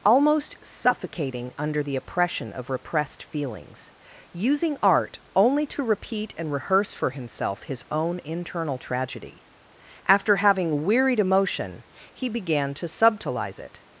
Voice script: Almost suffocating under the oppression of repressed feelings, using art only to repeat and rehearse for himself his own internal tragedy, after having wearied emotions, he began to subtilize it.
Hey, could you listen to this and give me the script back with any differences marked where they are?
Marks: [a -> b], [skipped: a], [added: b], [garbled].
Almost suffocating under the oppression of repressed feelings, using art only to repeat and rehearse for himself his own internal tragedy, after having wearied [emotions, -> emotion] he began to subtilize it.